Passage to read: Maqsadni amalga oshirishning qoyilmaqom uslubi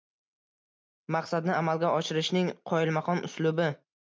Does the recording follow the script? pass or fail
pass